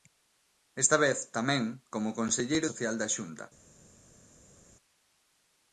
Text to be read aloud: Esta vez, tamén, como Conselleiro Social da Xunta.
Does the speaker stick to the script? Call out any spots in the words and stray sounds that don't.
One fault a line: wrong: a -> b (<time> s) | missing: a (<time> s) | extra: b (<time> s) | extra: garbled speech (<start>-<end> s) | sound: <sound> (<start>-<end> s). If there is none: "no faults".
no faults